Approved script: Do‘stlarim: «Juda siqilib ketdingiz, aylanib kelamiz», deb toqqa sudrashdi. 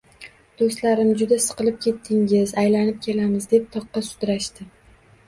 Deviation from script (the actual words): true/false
false